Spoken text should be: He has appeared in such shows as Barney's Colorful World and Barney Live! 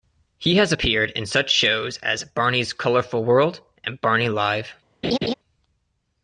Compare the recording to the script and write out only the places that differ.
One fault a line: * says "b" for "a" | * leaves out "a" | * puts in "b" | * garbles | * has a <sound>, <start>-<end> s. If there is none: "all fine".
* has a laugh, 5.0-5.3 s